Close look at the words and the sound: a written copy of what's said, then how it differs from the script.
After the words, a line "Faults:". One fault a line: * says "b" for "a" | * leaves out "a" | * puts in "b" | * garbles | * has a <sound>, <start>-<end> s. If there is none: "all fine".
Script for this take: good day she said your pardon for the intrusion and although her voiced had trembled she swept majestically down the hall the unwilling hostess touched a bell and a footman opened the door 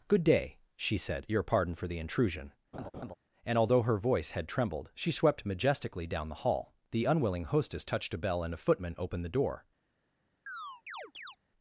good day she said your pardon for the intrusion and although her voice had trembled she swept majestically down the hall the unwilling hostess touched a bell and a footman opened the door
Faults:
* has a laugh, 2.7-3.1 s
* says "voice" for "voiced"
* has a chirp, 10.5-11.4 s